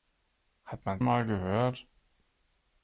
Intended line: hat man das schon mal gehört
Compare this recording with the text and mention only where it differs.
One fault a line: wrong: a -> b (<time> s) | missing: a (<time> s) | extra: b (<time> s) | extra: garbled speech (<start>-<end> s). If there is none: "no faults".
missing: das schon (1.0 s)